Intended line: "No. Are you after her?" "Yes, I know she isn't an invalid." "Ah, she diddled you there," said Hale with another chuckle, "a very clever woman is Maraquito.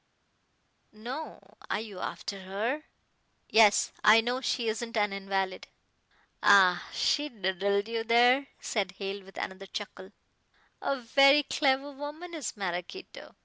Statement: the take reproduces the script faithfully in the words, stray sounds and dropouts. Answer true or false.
true